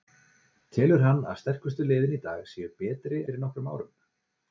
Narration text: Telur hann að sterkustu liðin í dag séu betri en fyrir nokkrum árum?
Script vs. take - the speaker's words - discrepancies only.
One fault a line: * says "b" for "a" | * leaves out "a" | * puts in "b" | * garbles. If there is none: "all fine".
* leaves out "en"